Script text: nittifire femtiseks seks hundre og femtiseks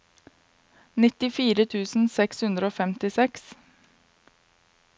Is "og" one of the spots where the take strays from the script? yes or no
no